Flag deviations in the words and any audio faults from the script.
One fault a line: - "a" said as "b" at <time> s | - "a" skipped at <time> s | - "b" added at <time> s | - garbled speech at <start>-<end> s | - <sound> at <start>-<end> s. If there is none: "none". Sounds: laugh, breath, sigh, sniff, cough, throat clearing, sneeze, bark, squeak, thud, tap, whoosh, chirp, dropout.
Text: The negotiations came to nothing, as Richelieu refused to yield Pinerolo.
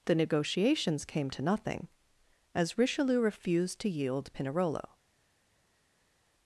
none